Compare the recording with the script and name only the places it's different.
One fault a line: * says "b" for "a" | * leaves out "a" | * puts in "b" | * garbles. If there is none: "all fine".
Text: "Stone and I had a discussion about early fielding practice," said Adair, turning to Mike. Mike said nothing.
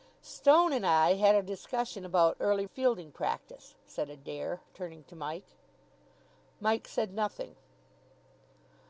all fine